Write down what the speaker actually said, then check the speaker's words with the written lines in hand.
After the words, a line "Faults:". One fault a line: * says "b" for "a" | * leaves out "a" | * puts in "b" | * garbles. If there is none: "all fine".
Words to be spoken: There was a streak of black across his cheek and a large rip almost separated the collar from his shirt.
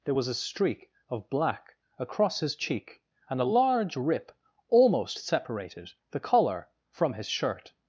There was a streak of black across his cheek and a large rip almost separated the collar from his shirt.
Faults:
all fine